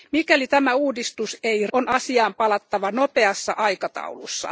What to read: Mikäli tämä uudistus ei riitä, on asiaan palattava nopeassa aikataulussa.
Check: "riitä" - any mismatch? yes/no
yes